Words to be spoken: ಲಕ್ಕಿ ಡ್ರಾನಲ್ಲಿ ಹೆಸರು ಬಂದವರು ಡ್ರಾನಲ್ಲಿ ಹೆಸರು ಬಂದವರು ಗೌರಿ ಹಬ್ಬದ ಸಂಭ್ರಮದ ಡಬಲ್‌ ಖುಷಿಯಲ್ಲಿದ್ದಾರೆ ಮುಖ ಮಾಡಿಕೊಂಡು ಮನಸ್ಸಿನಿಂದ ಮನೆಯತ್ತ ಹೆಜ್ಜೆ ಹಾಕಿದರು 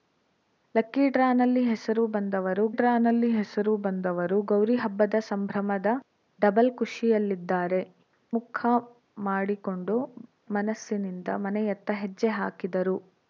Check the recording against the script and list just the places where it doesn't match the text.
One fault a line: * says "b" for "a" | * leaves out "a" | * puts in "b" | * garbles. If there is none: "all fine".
all fine